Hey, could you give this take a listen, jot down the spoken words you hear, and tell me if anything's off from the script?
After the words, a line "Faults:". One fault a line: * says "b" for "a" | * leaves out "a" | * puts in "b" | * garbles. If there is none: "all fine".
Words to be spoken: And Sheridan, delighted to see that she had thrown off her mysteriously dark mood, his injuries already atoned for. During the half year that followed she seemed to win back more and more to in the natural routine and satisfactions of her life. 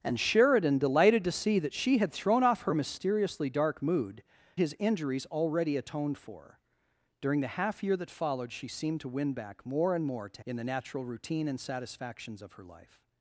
And Sheridan, delighted to see that she had thrown off her mysteriously dark mood, his injuries already atoned for. During the half year that followed she seemed to win back more and more to in the natural routine and satisfactions of her life.
Faults:
all fine